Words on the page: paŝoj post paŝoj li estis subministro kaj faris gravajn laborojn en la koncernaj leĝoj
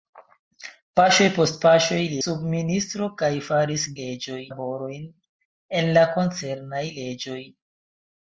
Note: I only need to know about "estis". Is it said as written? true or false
false